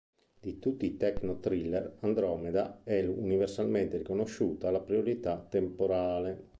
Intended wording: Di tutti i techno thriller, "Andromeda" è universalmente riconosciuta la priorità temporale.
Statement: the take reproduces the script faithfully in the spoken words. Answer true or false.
true